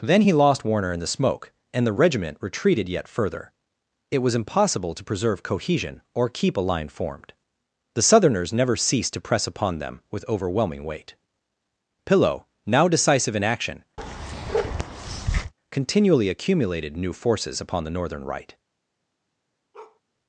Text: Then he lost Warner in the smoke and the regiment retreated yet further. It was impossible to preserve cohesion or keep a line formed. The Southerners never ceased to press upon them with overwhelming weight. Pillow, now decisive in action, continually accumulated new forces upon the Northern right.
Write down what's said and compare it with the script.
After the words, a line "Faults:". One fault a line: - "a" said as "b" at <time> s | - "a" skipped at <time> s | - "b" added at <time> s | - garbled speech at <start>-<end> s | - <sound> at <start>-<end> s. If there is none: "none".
Then he lost Warner in the smoke and the regiment retreated yet further. It was impossible to preserve cohesion or keep a line formed. The Southerners never ceased to press upon them with overwhelming weight. Pillow, now decisive in action, continually accumulated new forces upon the Northern right.
Faults:
- bark at 14.0-15.5 s
- bark at 19.7-20.0 s